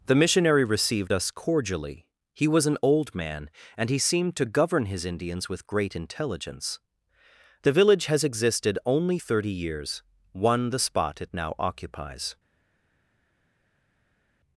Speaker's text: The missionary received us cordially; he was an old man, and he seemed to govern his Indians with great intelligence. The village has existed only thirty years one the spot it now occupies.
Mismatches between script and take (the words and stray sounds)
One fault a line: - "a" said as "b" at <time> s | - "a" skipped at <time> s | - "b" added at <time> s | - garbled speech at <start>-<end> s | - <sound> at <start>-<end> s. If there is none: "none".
none